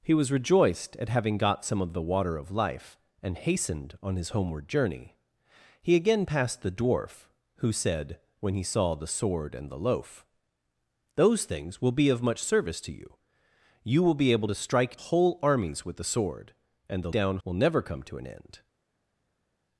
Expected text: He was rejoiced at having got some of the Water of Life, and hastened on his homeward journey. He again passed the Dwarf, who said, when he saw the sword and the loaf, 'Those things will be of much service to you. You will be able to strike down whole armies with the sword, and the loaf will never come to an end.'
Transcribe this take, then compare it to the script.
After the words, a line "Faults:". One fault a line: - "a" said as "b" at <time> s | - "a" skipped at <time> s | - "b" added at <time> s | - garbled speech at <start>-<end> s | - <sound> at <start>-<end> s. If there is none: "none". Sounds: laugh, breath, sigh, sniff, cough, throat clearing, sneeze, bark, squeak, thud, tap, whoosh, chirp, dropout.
He was rejoiced at having got some of the Water of Life, and hastened on his homeward journey. He again passed the Dwarf, who said, when he saw the sword and the loaf, 'Those things will be of much service to you. You will be able to strike whole armies with the sword, and the down will never come to an end.'
Faults:
- "down" skipped at 15.0 s
- "loaf" said as "down" at 17.1 s